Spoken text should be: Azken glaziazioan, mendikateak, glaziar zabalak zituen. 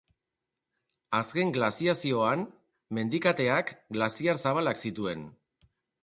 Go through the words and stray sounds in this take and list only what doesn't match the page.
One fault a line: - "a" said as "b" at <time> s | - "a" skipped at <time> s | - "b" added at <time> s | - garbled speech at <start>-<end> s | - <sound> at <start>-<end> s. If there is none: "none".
none